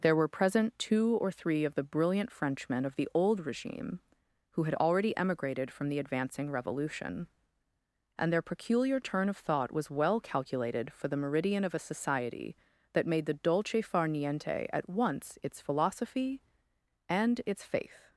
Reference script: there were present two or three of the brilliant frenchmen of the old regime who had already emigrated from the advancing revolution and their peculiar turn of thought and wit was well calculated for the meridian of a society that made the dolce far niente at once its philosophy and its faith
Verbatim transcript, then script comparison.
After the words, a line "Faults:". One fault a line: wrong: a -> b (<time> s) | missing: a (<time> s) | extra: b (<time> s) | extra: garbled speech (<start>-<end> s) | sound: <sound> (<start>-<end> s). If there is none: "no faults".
there were present two or three of the brilliant frenchmen of the old regime who had already emigrated from the advancing revolution and their peculiar turn of thought was well calculated for the meridian of a society that made the dolce far niente at once its philosophy and its faith
Faults:
missing: and wit (9.7 s)